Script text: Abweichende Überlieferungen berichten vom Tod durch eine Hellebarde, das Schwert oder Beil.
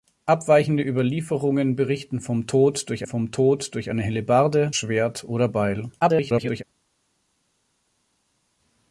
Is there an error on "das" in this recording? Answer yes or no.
yes